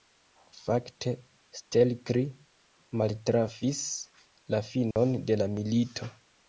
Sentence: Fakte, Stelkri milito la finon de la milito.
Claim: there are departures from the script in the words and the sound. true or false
true